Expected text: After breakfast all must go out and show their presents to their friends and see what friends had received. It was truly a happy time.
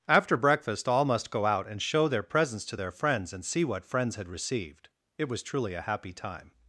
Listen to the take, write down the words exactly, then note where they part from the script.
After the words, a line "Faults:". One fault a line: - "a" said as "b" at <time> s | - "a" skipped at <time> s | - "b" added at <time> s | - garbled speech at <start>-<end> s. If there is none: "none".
After breakfast all must go out and show their presents to their friends and see what friends had received. It was truly a happy time.
Faults:
none